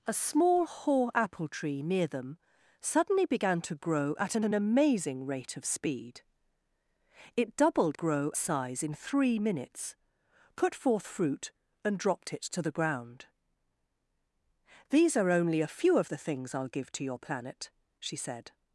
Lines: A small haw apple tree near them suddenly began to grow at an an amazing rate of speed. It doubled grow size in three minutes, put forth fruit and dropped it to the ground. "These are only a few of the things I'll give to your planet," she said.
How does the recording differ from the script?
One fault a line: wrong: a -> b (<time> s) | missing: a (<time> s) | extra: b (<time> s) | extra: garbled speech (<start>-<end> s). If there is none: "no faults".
no faults